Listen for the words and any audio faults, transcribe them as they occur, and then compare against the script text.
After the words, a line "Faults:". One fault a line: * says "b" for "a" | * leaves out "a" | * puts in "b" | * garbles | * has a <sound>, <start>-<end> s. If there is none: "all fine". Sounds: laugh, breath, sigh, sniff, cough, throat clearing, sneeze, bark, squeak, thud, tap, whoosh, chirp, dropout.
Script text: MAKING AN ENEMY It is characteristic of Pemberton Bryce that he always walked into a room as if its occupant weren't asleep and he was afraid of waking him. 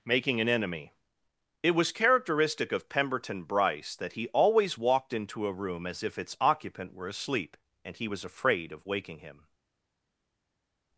MAKING AN ENEMY It was characteristic of Pemberton Bryce that he always walked into a room as if its occupant were asleep and he was afraid of waking him.
Faults:
* says "was" for "is"
* says "were" for "weren't"